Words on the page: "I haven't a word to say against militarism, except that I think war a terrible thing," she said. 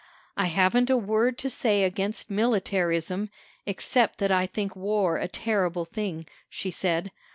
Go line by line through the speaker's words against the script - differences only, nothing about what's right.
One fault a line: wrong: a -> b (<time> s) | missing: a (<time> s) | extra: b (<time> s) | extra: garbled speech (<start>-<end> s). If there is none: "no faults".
no faults